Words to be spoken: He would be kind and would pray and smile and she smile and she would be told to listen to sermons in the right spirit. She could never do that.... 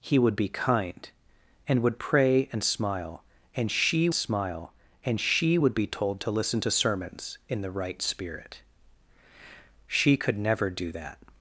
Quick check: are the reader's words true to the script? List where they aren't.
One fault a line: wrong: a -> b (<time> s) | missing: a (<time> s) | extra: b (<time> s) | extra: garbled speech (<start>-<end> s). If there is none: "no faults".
no faults